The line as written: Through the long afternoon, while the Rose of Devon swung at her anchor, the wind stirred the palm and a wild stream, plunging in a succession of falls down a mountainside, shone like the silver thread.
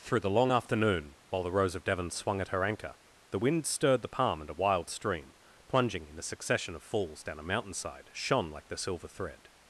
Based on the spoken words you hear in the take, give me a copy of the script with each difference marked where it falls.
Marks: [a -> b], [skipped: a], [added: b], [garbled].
Through the long afternoon, while the Rose of Devon swung at her anchor, the wind stirred the palm and a wild stream, plunging in a succession of falls down a mountainside, shone like the silver thread.